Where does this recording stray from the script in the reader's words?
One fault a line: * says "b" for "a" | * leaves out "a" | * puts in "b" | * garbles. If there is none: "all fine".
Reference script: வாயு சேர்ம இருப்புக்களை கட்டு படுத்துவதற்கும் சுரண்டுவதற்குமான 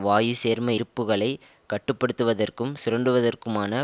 all fine